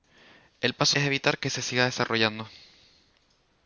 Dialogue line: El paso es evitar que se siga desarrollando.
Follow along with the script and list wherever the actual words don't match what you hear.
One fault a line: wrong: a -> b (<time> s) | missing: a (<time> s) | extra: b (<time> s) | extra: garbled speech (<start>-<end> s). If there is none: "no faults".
no faults